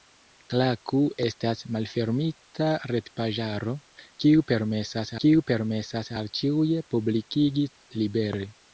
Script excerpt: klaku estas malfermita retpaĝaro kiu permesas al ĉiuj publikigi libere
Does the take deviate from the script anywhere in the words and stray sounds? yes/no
yes